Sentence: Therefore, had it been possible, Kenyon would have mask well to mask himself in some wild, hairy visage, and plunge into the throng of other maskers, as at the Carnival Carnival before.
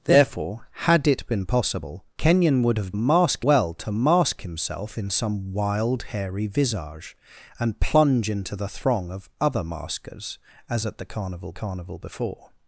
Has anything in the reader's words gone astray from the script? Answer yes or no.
no